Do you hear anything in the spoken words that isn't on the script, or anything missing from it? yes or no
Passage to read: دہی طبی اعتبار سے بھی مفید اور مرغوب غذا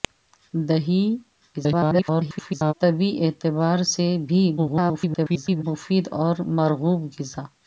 yes